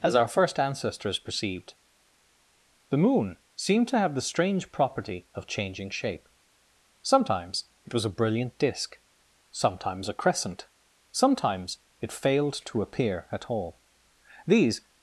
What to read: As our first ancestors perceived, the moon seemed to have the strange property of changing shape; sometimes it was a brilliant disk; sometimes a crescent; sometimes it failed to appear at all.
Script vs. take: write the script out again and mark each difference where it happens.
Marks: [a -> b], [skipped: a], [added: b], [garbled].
As our first ancestors perceived, the moon seemed to have the strange property of changing shape; sometimes it was a brilliant disk; sometimes a crescent; sometimes it failed to appear at all. [added: These]